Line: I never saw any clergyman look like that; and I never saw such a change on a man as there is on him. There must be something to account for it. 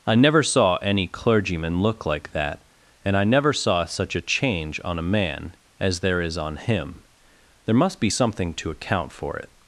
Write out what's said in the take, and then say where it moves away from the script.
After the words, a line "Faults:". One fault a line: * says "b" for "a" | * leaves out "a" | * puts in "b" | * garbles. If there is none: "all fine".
I never saw any clergyman look like that; and I never saw such a change on a man as there is on him. There must be something to account for it.
Faults:
all fine